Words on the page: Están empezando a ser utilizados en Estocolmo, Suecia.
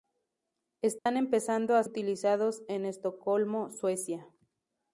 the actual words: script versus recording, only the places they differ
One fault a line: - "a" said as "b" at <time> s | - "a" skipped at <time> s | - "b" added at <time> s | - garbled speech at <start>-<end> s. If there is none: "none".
- "ser" skipped at 1.8 s